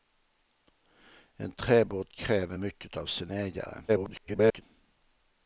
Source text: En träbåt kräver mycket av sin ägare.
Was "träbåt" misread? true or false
false